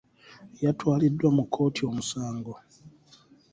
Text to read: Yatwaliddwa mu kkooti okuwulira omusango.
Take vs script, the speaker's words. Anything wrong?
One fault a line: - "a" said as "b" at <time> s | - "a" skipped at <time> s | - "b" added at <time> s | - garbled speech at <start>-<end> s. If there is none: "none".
- "okuwulira" skipped at 1.8 s